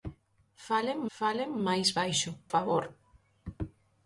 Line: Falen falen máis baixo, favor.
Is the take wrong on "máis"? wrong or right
right